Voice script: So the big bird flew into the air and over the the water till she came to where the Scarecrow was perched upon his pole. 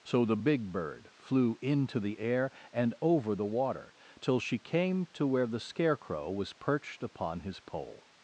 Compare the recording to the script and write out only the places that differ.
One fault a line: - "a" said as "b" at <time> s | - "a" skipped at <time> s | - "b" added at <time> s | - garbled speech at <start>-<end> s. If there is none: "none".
- "the" skipped at 3.5 s